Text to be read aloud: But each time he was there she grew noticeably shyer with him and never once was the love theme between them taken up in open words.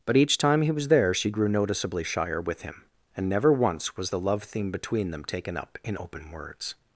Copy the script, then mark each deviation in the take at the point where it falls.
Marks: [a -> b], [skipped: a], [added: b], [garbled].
But each time he was there she grew noticeably shyer with him and never once was the love theme between them taken up in open words.